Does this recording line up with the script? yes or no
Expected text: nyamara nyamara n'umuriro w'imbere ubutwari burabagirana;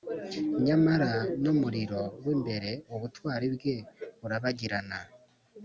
no